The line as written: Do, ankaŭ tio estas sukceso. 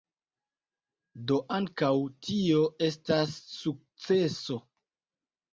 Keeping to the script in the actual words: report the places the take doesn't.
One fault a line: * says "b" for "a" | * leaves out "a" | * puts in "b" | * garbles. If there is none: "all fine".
all fine